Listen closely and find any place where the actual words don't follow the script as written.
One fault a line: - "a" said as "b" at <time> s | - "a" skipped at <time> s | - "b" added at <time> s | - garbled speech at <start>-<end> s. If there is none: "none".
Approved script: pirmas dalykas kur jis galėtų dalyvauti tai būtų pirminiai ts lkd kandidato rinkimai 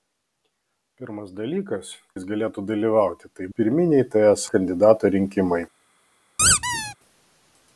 - "kur" skipped at 1.9 s
- "būtų" skipped at 3.5 s
- "lkd" skipped at 4.5 s